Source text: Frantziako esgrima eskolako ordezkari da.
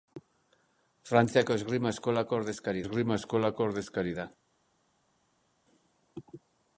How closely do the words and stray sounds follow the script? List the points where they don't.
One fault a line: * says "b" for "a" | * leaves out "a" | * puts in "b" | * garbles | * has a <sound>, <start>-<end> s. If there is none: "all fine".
* puts in "esgrima eskolako ordezkari"